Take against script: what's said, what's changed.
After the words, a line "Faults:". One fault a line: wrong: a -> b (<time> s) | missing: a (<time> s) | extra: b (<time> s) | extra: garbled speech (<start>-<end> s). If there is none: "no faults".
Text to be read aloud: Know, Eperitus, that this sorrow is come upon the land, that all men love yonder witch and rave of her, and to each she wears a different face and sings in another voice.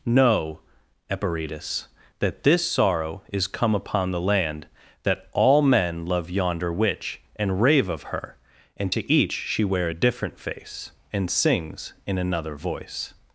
Know, Eperitus, that this sorrow is come upon the land, that all men love yonder witch and rave of her, and to each she wear a different face and sings in another voice.
Faults:
wrong: wears -> wear (9.6 s)